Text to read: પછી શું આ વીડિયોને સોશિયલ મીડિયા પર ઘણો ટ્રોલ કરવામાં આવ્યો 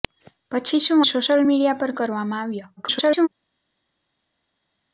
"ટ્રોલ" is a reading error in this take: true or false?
true